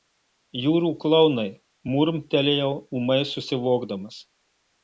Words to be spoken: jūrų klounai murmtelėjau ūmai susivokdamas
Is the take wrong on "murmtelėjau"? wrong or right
right